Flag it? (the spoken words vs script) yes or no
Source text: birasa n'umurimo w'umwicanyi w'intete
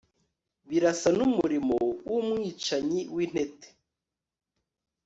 no